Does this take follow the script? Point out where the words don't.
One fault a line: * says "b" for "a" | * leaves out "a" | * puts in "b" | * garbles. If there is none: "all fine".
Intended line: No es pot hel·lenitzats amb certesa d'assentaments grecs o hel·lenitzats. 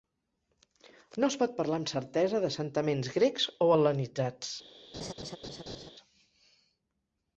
* says "parlar" for "hel·lenitzats"